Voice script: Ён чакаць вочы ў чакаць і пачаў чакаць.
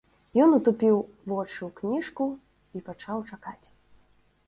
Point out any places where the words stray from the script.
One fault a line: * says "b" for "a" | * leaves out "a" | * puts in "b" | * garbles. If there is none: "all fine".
* says "утупіў" for "чакаць"
* says "кніжку" for "чакаць"